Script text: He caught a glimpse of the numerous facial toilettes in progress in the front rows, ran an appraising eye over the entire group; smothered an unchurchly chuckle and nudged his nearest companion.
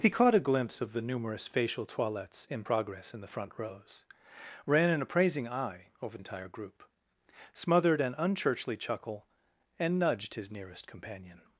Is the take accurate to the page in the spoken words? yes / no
no